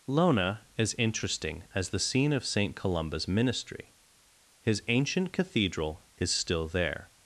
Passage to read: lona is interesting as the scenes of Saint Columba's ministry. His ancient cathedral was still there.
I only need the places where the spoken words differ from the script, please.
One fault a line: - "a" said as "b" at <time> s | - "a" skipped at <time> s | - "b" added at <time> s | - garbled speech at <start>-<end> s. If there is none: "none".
- "scenes" said as "scene" at 2.0 s
- "was" said as "is" at 6.2 s